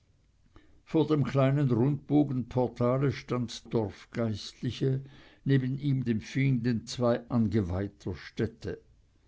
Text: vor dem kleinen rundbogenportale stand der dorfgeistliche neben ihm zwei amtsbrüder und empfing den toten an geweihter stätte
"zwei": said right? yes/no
no